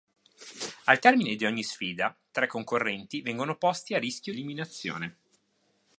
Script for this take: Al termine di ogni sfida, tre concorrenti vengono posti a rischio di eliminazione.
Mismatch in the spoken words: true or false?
true